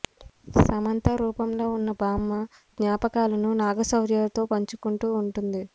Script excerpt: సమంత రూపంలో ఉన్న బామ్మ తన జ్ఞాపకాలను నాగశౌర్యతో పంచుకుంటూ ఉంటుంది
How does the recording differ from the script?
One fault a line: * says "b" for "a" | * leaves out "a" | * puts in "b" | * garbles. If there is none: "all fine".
* leaves out "తన"